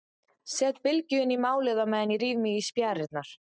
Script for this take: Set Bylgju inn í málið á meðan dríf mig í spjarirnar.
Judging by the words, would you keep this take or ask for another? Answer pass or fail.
pass